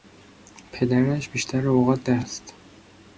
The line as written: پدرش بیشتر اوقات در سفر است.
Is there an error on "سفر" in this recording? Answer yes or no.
yes